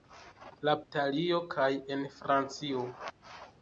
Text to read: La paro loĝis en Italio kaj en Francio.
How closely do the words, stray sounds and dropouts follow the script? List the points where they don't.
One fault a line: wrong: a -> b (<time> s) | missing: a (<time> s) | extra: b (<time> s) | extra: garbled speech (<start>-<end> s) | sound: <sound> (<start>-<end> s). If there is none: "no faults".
missing: paro loĝis en (0.7 s)